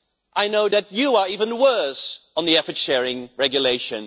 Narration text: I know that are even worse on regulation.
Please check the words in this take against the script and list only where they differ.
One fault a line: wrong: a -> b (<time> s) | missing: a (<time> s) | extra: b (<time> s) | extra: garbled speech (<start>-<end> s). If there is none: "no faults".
extra: you (0.9 s)
extra: the effort sharing (2.5 s)